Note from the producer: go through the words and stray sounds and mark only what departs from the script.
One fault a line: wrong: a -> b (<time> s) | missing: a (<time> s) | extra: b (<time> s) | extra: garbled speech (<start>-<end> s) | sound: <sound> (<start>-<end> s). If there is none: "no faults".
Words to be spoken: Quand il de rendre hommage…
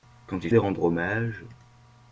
no faults